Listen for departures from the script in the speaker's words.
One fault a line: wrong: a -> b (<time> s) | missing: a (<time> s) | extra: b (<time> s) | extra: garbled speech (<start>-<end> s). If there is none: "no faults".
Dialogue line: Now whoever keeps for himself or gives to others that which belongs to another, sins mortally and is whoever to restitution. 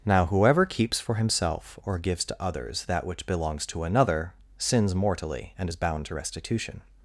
wrong: whoever -> bound (5.8 s)